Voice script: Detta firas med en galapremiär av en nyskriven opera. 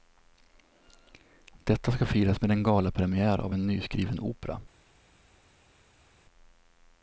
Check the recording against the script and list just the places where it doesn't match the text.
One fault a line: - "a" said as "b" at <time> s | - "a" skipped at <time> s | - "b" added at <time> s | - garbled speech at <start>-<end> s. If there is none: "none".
- "ska" added at 1.9 s